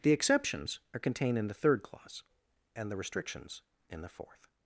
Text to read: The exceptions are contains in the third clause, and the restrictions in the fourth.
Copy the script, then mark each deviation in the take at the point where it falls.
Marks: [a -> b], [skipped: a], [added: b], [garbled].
The exceptions are [contains -> contained] in the third clause, and the restrictions in the fourth.